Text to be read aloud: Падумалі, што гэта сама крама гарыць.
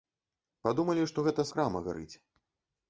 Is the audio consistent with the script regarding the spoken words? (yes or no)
no